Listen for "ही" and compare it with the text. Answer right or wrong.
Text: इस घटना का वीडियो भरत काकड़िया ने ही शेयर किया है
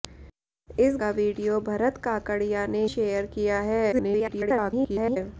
wrong